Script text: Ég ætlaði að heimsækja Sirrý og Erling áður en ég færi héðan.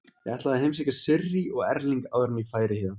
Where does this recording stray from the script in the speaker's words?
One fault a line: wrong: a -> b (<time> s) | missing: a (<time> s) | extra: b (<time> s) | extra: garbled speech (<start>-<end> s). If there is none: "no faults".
no faults